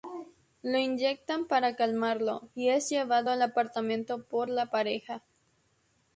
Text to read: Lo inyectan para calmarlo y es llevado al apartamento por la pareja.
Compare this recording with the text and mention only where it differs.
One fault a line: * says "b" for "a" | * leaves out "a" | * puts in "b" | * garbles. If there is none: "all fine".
all fine